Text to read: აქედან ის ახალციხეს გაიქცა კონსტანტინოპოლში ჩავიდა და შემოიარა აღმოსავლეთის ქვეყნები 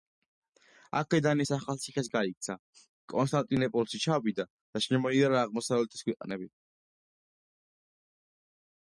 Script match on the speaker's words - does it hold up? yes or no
yes